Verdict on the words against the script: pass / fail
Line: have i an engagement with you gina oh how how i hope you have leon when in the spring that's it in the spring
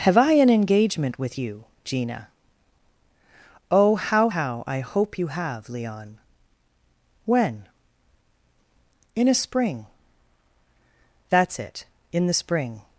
fail